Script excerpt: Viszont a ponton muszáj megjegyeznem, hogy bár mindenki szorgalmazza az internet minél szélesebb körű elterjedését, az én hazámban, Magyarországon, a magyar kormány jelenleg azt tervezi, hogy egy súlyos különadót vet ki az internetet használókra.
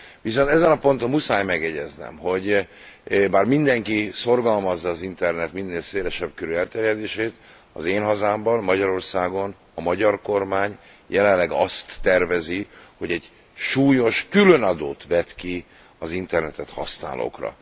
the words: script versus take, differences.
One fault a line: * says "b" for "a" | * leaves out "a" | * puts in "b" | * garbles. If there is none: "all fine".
* puts in "ezen"